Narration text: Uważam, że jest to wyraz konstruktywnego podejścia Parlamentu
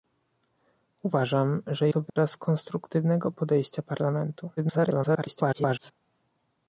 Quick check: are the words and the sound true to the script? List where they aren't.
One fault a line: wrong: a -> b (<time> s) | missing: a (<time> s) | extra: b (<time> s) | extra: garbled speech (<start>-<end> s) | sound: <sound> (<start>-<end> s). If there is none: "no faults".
missing: jest (1.9 s)
sound: dropout (2.1-2.2 s)
extra: garbled speech (4.6-5.9 s)